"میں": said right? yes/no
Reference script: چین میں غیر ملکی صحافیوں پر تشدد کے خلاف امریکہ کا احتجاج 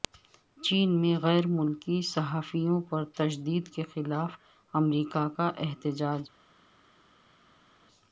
yes